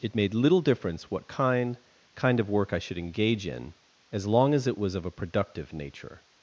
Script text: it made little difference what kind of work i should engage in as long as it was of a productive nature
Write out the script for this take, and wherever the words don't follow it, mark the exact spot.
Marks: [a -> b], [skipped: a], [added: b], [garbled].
it made little difference what kind [added: kind] of work i should engage in as long as it was of a productive nature